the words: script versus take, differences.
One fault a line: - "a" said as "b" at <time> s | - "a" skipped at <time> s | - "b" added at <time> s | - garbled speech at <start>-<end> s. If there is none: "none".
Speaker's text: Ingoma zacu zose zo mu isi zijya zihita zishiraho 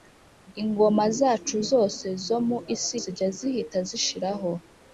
none